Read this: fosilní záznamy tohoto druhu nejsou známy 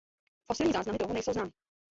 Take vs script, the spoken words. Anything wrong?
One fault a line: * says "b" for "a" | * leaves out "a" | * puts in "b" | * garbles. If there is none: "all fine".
* leaves out "tohoto"